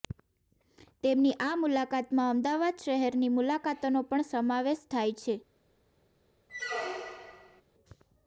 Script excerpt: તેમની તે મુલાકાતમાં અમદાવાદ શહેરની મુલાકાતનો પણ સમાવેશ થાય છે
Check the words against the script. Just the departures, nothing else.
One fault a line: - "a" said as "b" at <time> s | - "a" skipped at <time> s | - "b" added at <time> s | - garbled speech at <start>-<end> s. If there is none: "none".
- "તે" said as "આ" at 1.4 s